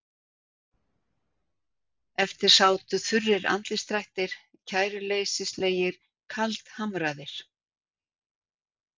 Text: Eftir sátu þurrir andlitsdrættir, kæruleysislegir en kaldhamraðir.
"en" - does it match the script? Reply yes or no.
no